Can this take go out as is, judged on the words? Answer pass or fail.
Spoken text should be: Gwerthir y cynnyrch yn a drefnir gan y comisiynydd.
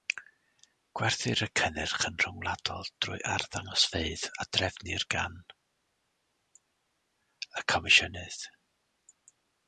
fail